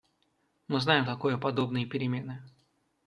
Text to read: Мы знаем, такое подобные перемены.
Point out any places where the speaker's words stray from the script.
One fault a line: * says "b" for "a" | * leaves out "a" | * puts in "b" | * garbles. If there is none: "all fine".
all fine